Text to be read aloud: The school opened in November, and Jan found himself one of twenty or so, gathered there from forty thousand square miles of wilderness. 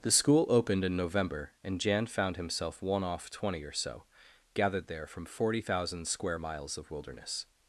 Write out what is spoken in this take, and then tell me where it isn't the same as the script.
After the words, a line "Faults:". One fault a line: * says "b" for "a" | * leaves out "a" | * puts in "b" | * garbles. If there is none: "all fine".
The school opened in November, and Jan found himself one off twenty or so, gathered there from forty thousand square miles of wilderness.
Faults:
* says "off" for "of"